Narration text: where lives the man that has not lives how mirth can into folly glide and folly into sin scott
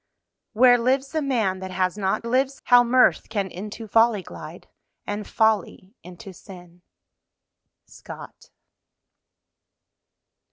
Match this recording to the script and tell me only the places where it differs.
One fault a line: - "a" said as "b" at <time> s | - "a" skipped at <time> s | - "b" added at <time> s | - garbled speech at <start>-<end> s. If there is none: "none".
none